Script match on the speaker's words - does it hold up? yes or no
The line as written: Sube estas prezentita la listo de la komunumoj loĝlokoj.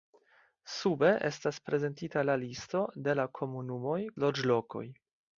yes